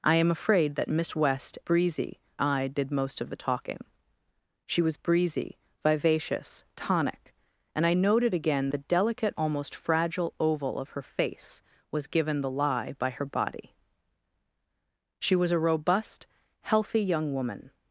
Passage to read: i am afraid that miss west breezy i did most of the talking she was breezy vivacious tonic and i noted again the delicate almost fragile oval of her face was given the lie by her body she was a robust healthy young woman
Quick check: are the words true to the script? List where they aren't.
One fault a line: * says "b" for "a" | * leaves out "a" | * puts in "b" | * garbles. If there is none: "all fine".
all fine